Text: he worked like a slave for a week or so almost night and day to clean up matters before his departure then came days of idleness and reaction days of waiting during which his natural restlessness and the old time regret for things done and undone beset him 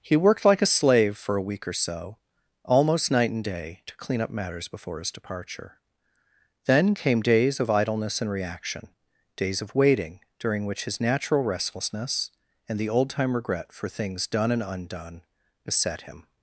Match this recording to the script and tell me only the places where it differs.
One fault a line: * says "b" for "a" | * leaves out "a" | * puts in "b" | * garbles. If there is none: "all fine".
all fine